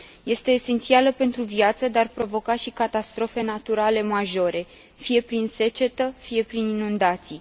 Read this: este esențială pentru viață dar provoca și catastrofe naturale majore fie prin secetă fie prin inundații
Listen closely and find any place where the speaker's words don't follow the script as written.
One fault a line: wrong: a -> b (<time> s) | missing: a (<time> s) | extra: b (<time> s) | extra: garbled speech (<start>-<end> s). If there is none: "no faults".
no faults